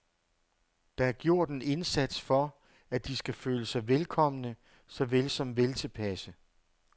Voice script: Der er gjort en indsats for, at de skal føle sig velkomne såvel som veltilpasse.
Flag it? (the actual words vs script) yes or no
no